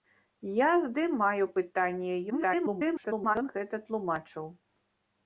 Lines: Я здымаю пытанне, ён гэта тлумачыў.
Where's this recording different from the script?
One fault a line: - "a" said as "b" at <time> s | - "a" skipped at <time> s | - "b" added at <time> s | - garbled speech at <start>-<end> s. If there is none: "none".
- garbled speech at 2.3-3.4 s